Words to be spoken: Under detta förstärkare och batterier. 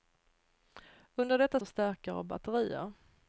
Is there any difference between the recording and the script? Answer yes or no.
no